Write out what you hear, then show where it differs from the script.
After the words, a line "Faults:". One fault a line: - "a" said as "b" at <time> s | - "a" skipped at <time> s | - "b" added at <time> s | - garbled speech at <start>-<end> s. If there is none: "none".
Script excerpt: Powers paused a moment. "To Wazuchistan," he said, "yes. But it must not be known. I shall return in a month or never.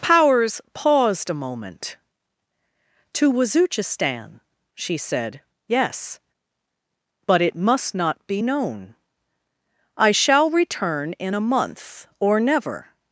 Powers paused a moment. "To Wazuchistan," she said, "yes. But it must not be known. I shall return in a month or never.
Faults:
- "he" said as "she" at 4.7 s